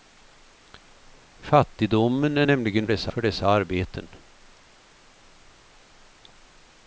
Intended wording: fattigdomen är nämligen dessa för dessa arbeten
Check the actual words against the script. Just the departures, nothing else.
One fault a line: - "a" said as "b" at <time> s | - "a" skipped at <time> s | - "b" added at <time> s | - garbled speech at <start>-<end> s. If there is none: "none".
none